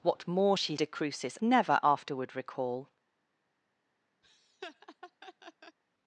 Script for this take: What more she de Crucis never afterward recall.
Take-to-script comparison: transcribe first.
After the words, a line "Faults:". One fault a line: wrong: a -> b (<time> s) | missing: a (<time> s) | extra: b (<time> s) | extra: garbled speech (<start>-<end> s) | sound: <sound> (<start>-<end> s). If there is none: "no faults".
What more she de Crucis never afterward recall.
Faults:
sound: laugh (4.2-5.8 s)